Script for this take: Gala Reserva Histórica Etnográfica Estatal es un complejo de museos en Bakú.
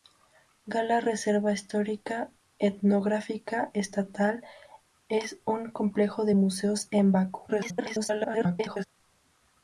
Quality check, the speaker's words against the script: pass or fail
fail